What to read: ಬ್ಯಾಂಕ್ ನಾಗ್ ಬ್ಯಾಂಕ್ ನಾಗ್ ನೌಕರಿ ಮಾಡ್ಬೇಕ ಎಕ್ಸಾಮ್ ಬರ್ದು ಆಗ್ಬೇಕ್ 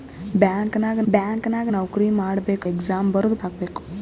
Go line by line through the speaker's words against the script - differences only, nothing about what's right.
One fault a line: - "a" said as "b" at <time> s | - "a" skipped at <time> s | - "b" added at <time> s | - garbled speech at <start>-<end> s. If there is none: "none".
none